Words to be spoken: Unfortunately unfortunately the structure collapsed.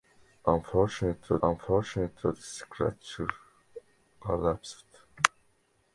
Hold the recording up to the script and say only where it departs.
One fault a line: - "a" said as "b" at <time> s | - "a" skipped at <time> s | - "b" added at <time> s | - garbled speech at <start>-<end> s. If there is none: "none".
none